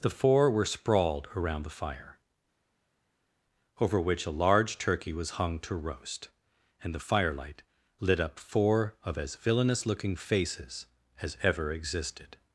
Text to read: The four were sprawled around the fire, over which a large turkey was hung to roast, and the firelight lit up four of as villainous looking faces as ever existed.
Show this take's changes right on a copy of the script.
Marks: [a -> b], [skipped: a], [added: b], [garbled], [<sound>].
The four were sprawled around the fire, over which a large turkey was hung to roast, and the firelight lit up four of as villainous looking faces as ever existed.